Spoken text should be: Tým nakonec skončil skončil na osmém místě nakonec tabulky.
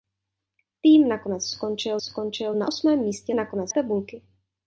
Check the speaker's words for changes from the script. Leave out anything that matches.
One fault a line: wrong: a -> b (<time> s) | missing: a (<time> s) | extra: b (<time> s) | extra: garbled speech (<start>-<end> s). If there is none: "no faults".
no faults